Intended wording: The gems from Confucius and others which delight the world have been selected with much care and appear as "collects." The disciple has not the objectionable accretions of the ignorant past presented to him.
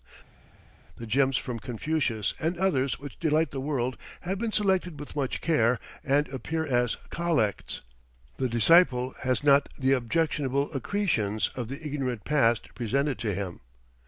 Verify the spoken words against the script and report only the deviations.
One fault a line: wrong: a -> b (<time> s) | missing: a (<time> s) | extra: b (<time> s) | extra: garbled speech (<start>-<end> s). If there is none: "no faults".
no faults